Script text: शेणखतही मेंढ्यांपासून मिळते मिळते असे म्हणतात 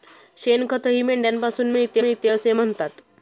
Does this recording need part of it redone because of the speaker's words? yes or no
no